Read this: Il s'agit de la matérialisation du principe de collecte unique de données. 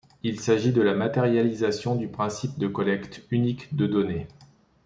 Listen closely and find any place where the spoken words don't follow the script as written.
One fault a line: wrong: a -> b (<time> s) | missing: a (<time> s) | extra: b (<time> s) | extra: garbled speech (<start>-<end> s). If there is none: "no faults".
no faults